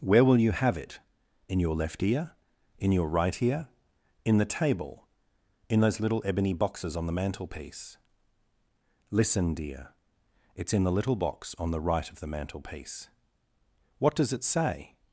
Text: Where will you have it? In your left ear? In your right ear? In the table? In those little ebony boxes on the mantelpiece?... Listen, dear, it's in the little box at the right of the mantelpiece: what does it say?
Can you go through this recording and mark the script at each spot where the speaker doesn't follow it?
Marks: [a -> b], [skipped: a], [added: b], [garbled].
Where will you have it? In your left ear? In your right ear? In the table? In those little ebony boxes on the mantelpiece?... Listen, dear, it's in the little box [at -> on] the right of the mantelpiece: what does it say?